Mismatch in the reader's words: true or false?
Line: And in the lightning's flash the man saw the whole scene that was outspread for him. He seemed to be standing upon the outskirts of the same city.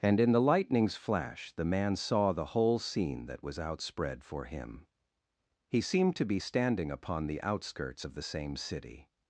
false